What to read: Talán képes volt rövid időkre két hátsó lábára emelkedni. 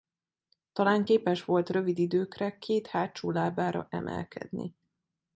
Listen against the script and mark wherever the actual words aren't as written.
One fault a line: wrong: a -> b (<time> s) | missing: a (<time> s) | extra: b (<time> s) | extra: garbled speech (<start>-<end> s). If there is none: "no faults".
no faults